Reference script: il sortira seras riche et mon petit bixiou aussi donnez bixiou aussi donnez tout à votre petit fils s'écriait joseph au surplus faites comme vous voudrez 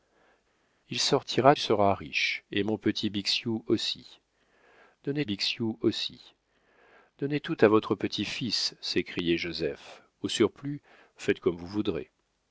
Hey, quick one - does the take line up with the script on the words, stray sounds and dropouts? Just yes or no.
yes